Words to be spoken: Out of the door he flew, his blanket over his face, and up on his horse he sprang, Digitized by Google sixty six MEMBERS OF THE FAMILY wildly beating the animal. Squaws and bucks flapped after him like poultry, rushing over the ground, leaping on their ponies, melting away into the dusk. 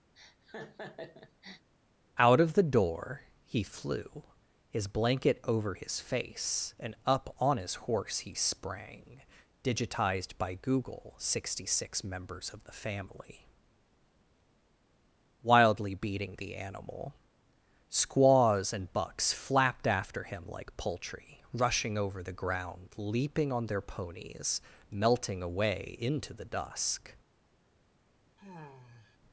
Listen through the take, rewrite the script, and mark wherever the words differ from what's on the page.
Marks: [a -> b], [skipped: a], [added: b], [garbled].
Out of the door he flew, his blanket over his face, and up on his horse he sprang, Digitized by Google sixty six MEMBERS OF THE FAMILY wildly beating the animal. Squaws and bucks flapped after him like poultry, rushing over the ground, leaping on their ponies, melting away into the dusk.